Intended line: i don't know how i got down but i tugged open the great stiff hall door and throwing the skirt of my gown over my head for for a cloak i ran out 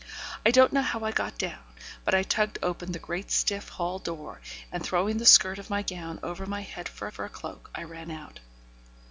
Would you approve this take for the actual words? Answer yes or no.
yes